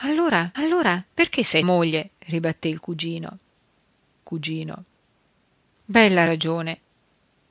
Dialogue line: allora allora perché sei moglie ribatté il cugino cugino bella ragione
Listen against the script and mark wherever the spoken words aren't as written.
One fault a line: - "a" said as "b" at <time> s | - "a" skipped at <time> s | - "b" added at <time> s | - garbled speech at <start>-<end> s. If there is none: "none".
none